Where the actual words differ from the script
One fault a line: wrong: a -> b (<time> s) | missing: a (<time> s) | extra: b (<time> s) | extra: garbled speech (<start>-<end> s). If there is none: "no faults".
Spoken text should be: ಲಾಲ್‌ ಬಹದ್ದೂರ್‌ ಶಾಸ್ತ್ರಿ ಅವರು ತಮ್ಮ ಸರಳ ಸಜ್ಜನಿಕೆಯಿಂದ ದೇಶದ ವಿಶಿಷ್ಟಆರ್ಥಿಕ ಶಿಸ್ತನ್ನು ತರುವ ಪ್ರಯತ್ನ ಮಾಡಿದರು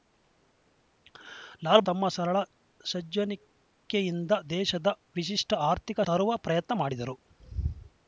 missing: ಬಹದ್ದೂರ್ ಶಾಸ್ತ್ರಿ ಅವರು (1.8 s)
missing: ಶಿಸ್ತನ್ನು (6.0 s)